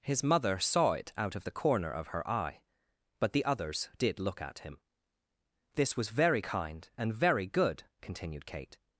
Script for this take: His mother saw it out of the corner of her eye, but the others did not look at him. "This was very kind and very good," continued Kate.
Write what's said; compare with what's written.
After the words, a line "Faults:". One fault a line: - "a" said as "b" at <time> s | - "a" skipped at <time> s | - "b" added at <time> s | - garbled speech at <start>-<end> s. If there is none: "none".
His mother saw it out of the corner of her eye, but the others did look at him. "This was very kind and very good," continued Kate.
Faults:
- "not" skipped at 4.2 s